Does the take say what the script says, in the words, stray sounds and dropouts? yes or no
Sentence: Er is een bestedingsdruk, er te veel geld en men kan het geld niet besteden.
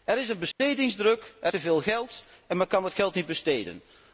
no